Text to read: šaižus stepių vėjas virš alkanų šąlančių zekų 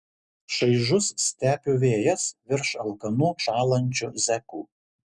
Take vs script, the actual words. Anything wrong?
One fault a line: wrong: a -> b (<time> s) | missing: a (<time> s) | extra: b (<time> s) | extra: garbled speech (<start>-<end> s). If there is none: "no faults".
no faults